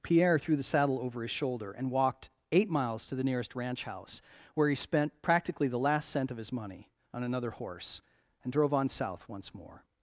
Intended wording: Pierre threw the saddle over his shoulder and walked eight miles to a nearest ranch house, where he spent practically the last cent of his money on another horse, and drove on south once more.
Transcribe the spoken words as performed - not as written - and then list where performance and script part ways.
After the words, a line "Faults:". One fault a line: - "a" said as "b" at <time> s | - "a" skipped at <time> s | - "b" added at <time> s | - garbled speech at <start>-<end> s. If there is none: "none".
Pierre threw the saddle over his shoulder and walked eight miles to the nearest ranch house, where he spent practically the last cent of his money on another horse, and drove on south once more.
Faults:
- "a" said as "the" at 3.1 s